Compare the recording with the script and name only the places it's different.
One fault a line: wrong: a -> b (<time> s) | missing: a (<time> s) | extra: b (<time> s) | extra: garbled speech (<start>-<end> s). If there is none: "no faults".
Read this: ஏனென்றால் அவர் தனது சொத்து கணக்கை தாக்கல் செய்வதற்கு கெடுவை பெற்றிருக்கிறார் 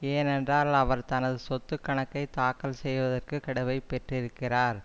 no faults